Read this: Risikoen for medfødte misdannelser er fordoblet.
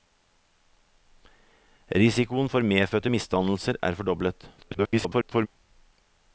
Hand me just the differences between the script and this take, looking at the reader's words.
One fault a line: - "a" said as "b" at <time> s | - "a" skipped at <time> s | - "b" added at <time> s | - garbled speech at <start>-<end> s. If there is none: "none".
- garbled speech at 4.6-5.5 s